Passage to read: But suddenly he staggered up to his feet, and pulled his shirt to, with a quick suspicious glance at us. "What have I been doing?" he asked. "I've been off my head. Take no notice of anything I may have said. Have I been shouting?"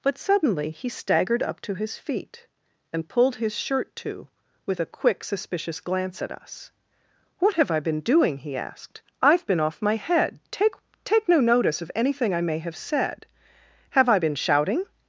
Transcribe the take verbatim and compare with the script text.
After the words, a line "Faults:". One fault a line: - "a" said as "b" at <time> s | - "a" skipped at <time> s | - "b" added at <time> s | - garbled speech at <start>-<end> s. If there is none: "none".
But suddenly he staggered up to his feet, and pulled his shirt to, with a quick suspicious glance at us. "What have I been doing?" he asked. "I've been off my head. Take Take no notice of anything I may have said. Have I been shouting?"
Faults:
- "Take" added at 11.0 s